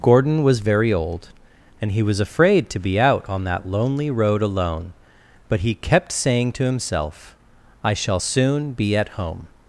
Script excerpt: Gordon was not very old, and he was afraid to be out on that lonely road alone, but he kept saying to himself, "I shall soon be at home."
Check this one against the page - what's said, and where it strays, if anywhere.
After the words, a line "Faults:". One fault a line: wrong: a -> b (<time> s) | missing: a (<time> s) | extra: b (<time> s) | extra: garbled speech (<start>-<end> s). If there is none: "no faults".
Gordon was very old, and he was afraid to be out on that lonely road alone, but he kept saying to himself, "I shall soon be at home."
Faults:
missing: not (0.6 s)